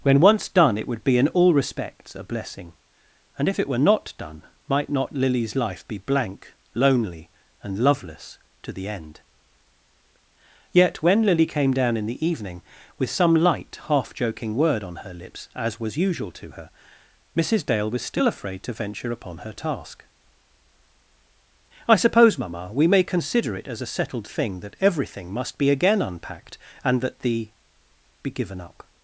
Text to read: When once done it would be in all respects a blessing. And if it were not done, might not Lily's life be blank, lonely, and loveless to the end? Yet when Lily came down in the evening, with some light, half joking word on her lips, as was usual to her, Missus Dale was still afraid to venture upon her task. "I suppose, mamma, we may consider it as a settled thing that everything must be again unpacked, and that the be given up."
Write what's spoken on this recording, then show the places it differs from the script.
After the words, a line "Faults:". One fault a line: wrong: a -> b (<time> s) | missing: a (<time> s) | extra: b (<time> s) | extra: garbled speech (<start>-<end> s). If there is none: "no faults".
When once done it would be in all respects a blessing. And if it were not done, might not Lily's life be blank, lonely, and loveless to the end? Yet when Lily came down in the evening, with some light, half joking word on her lips, as was usual to her, Missus Dale was still afraid to venture upon her task. "I suppose, mamma, we may consider it as a settled thing that everything must be again unpacked, and that the be given up."
Faults:
no faults